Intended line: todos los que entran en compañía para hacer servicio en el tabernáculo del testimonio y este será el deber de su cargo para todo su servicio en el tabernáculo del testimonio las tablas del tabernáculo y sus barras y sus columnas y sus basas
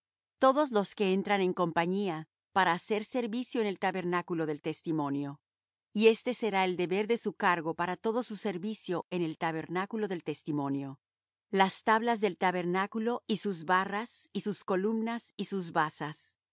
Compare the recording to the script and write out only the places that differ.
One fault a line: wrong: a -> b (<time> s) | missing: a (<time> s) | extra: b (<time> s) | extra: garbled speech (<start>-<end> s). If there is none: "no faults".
no faults